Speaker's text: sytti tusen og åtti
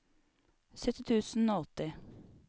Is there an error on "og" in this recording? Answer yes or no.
no